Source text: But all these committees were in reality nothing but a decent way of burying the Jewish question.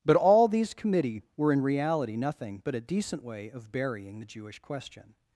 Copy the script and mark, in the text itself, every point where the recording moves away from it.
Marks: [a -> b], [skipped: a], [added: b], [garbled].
But all these [committees -> committee] were in reality nothing but a decent way of burying the Jewish question.